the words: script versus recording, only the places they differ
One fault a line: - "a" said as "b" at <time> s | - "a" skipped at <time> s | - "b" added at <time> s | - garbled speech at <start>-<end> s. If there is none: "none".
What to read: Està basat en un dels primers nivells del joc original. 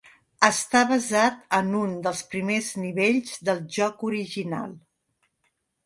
none